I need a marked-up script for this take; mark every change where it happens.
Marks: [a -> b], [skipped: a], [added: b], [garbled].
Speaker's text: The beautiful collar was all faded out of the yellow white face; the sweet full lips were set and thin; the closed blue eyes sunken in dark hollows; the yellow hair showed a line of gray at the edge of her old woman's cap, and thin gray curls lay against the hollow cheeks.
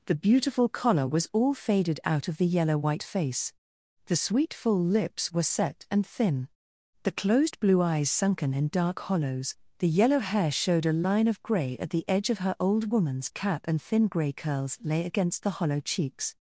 The beautiful collar was all faded out of the yellow white face; the sweet full lips were set and thin; the closed blue eyes sunken in dark hollows; the yellow hair showed a line of gray at the edge of her old woman's cap, and thin gray curls lay against the hollow cheeks.